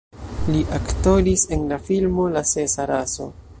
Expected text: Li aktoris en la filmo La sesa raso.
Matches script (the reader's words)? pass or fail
pass